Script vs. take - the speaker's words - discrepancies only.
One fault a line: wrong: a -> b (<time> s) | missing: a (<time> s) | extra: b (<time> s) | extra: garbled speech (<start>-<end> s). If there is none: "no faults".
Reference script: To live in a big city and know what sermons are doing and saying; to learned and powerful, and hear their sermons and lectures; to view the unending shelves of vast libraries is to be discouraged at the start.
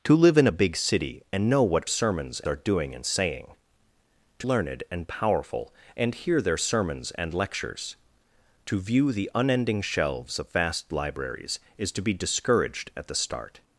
no faults